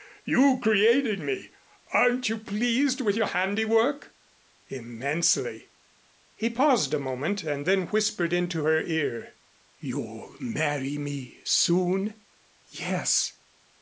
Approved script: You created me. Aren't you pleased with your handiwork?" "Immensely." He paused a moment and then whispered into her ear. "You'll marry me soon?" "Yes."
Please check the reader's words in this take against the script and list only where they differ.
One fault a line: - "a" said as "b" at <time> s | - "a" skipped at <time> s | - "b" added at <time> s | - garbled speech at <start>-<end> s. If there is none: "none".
none